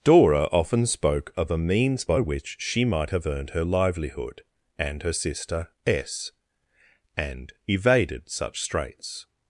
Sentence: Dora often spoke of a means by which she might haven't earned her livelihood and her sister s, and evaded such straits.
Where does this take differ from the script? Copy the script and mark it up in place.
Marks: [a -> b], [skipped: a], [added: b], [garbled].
Dora often spoke of a means by which she might [haven't -> have] earned her livelihood and her sister s, and evaded such straits.